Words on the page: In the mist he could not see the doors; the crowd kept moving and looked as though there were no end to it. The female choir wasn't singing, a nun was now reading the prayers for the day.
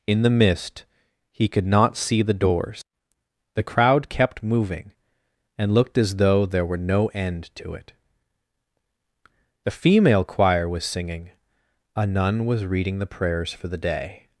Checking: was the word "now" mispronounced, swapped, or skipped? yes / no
yes